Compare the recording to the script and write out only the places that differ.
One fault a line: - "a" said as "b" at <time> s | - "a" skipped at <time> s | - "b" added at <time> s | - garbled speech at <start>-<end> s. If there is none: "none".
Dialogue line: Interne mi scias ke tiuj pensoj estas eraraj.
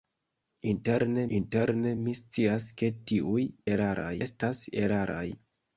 - "interne" added at 1.4 s
- "pensoj" said as "eraraj" at 3.8 s